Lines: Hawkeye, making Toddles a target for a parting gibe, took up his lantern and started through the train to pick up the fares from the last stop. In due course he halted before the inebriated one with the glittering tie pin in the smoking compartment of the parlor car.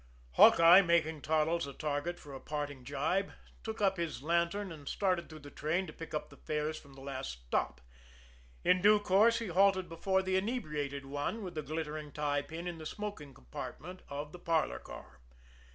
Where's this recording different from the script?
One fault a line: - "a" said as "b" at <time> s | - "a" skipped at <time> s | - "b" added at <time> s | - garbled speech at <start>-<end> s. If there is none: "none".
none